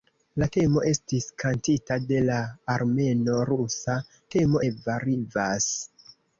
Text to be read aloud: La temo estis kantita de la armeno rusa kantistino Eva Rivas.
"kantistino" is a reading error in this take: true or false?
true